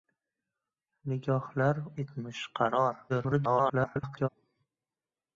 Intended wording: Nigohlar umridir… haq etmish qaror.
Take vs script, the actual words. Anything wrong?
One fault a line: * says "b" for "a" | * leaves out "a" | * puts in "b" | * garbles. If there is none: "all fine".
* leaves out "umridir haq"
* garbles